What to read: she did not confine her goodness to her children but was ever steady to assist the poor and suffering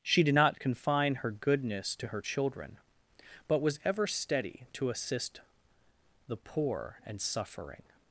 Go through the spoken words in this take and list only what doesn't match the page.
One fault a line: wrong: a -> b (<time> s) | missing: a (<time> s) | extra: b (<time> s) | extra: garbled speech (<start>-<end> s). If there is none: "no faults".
no faults